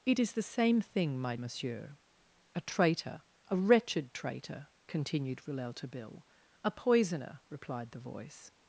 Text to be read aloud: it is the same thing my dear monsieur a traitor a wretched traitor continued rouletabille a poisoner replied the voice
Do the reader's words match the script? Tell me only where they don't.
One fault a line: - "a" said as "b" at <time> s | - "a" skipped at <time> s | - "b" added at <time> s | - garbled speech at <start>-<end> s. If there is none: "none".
- "dear" skipped at 1.4 s